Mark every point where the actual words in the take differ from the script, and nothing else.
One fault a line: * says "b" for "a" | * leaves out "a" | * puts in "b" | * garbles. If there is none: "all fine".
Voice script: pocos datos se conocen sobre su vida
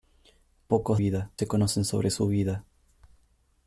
* says "vida" for "datos"